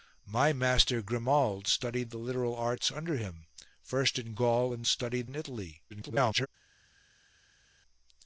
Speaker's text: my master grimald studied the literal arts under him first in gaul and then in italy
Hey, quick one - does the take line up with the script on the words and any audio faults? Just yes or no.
no